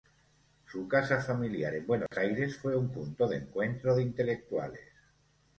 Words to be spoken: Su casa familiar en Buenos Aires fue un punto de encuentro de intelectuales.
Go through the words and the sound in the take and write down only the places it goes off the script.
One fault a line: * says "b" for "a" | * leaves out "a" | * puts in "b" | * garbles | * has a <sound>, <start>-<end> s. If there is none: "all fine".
* has a dropout, 2.1-2.1 s